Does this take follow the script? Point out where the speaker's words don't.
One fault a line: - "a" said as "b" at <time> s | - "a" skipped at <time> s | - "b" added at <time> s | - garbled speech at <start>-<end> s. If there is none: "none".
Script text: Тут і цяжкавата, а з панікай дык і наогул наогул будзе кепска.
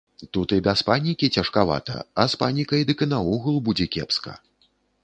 - "без панікі" added at 0.7 s
- "наогул" skipped at 3.6 s